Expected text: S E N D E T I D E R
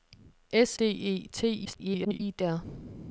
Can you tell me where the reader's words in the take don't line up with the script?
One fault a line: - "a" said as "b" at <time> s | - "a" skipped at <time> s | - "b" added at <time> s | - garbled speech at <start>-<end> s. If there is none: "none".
- "E N" skipped at 0.8 s
- garbled speech at 1.6-2.2 s
- "E" skipped at 2.4 s